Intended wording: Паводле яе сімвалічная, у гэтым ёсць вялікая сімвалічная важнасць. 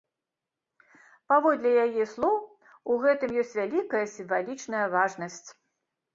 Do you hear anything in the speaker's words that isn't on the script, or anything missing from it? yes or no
yes